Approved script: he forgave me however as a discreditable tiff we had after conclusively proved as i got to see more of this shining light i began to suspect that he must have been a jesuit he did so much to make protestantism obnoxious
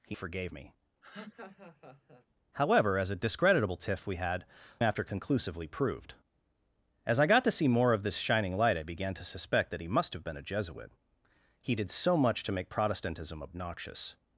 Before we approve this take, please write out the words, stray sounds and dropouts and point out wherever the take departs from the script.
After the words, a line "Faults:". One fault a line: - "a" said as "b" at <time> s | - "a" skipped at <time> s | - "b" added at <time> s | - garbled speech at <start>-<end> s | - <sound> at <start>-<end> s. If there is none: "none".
he forgave me however as a discreditable tiff we had after conclusively proved as i got to see more of this shining light i began to suspect that he must have been a jesuit he did so much to make protestantism obnoxious
Faults:
- laugh at 1.0-2.3 s